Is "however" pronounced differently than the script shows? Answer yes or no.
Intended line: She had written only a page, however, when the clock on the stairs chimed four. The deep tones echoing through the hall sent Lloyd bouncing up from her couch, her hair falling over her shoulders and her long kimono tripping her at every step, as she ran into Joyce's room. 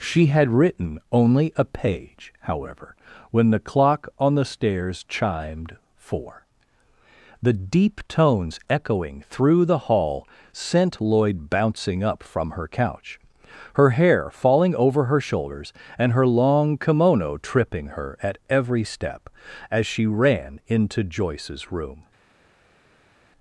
no